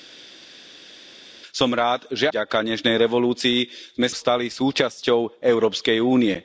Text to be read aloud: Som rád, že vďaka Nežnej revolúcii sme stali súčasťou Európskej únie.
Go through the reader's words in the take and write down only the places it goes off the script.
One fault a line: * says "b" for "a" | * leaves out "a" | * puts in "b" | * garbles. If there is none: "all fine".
all fine